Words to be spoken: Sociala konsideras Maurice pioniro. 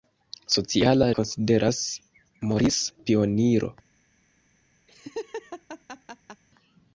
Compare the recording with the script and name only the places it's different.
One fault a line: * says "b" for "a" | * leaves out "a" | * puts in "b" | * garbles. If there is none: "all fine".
all fine